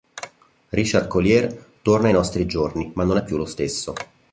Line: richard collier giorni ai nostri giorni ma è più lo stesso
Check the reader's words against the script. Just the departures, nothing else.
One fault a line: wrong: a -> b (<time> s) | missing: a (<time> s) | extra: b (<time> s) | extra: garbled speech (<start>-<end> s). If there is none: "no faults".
wrong: giorni -> torna (1.8 s)
extra: non (3.0 s)